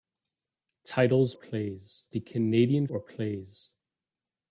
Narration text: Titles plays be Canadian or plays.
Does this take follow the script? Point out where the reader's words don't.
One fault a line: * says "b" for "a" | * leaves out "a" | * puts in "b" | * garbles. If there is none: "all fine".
all fine